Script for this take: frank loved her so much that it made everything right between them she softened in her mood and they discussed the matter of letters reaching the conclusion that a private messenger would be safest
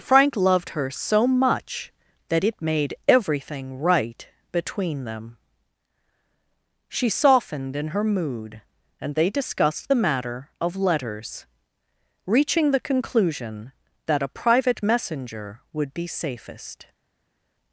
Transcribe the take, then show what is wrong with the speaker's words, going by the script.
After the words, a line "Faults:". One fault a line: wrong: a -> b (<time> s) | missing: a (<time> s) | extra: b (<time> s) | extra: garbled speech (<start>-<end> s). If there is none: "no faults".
frank loved her so much that it made everything right between them she softened in her mood and they discussed the matter of letters reaching the conclusion that a private messenger would be safest
Faults:
no faults